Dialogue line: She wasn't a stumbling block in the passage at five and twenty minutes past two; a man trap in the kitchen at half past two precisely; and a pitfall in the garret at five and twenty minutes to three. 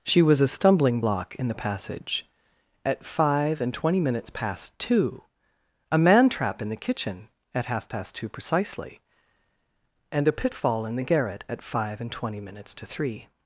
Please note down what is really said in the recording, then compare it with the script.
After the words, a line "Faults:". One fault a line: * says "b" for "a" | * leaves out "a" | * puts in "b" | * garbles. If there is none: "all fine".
She was a stumbling block in the passage at five and twenty minutes past two; a man trap in the kitchen at half past two precisely; and a pitfall in the garret at five and twenty minutes to three.
Faults:
* says "was" for "wasn't"